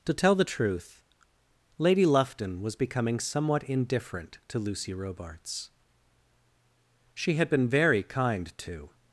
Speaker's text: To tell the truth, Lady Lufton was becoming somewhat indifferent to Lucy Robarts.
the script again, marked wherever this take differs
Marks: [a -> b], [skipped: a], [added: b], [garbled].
To tell the truth, Lady Lufton was becoming somewhat indifferent to Lucy Robarts. [added: She had been very kind to]